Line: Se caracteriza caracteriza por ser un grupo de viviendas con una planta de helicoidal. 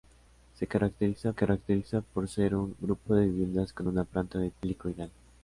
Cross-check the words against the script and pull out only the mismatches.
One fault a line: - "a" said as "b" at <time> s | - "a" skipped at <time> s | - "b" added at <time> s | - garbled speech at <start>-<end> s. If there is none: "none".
none